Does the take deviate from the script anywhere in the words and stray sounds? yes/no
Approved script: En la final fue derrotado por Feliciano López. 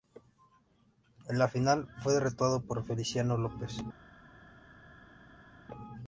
no